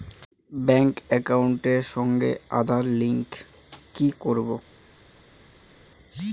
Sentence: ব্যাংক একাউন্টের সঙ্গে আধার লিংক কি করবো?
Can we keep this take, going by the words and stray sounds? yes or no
yes